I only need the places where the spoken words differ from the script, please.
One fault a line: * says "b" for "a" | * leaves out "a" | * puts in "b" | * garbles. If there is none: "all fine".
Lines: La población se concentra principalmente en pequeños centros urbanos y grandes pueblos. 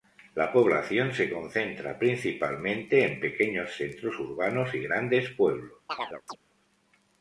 all fine